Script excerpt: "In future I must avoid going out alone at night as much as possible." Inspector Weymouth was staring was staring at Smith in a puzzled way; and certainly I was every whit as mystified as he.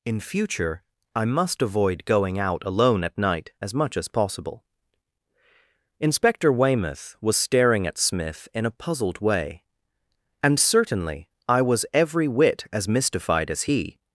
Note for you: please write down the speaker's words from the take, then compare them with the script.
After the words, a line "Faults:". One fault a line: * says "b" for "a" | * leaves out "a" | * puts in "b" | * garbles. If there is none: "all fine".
"In future I must avoid going out alone at night as much as possible." Inspector Weymouth was staring at Smith in a puzzled way; and certainly I was every whit as mystified as he.
Faults:
* leaves out "was staring"